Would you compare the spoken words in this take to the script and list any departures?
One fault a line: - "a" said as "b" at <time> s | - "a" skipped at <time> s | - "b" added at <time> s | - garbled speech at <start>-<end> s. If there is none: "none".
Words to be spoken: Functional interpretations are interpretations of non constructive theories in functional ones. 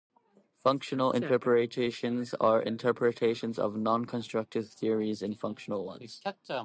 none